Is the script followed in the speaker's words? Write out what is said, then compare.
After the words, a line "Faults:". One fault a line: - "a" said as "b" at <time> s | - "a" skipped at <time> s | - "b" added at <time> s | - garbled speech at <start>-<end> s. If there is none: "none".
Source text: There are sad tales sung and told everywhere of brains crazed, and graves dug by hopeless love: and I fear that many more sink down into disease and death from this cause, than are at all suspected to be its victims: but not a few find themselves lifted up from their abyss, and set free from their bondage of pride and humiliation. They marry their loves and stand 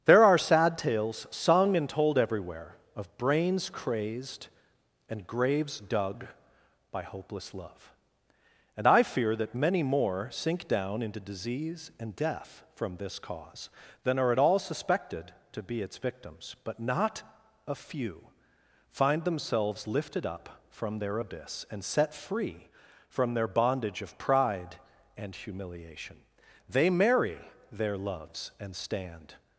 There are sad tales sung and told everywhere of brains crazed, and graves dug by hopeless love: and I fear that many more sink down into disease and death from this cause, than are at all suspected to be its victims: but not a few find themselves lifted up from their abyss, and set free from their bondage of pride and humiliation. They marry their loves and stand
Faults:
none